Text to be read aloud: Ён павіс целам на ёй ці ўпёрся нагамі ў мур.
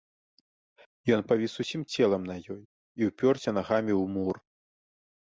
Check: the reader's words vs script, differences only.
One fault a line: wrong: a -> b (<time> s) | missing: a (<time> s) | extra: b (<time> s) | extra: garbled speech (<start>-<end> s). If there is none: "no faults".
extra: усім (1.6 s)
wrong: ці -> і (2.6 s)